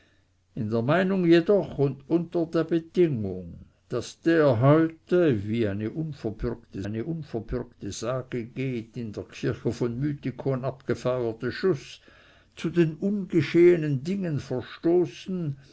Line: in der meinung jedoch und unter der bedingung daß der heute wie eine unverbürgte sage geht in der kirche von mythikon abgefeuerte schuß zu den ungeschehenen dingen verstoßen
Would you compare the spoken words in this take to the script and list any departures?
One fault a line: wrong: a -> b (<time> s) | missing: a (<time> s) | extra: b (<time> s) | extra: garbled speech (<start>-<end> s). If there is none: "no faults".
extra: eine unverbürgte (6.8 s)